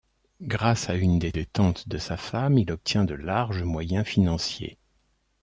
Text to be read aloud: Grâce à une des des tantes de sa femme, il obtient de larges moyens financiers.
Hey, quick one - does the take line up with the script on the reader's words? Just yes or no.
yes